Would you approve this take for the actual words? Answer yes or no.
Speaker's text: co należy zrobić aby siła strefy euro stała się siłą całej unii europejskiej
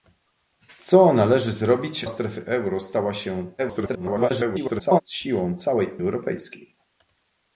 no